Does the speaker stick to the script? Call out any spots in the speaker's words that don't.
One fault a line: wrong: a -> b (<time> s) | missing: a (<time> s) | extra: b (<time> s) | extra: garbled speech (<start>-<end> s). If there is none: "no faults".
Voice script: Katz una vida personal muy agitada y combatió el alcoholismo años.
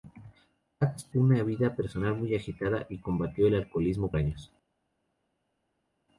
no faults